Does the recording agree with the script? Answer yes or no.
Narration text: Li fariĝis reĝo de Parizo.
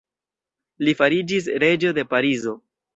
yes